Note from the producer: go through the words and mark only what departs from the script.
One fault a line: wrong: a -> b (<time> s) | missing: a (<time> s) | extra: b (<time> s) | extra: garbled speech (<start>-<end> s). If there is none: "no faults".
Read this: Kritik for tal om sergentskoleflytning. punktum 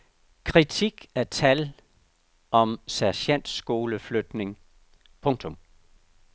wrong: for -> af (1.1 s)